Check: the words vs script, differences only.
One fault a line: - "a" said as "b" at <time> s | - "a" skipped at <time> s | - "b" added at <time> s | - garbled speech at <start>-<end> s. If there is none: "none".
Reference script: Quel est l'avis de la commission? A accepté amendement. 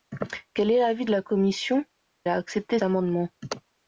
none